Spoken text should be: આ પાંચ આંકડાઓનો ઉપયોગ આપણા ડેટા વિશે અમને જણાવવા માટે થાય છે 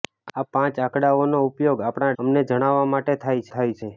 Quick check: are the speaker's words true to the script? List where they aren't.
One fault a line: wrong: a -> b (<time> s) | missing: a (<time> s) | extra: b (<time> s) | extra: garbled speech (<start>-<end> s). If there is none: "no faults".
missing: ડેટા વિશે (2.1 s)
extra: થાય (3.5 s)